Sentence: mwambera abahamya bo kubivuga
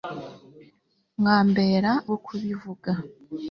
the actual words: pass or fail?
fail